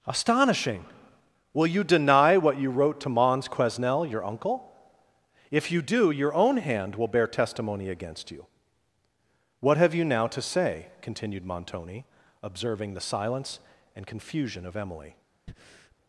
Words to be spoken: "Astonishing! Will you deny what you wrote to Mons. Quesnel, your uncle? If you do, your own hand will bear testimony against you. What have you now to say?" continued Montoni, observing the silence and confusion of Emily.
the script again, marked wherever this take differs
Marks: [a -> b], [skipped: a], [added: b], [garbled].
"Astonishing! Will you deny what you wrote to Mons. Quesnel, your uncle? If you do, your own hand will bear testimony against you. What have you now to say?" continued Montoni, observing the silence and confusion of Emily.